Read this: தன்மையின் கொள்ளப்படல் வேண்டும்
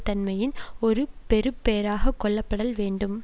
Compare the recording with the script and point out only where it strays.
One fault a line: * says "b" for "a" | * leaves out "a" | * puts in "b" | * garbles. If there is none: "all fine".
* puts in "ஒரு பெறுபேறாக"